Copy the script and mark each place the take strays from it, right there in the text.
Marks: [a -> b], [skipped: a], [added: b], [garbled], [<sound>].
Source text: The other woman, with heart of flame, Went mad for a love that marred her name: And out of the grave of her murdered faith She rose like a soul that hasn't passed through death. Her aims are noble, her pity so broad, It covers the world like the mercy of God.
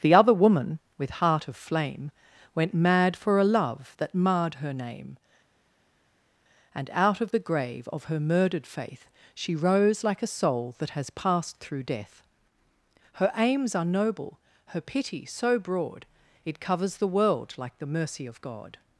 The other woman, with heart of flame, Went mad for a love that marred her name: And out of the grave of her murdered faith She rose like a soul that [hasn't -> has] passed through death. Her aims are noble, her pity so broad, It covers the world like the mercy of God.